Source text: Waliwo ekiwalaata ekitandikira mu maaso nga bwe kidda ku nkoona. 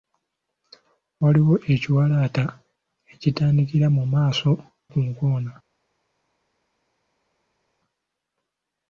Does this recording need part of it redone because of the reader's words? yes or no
yes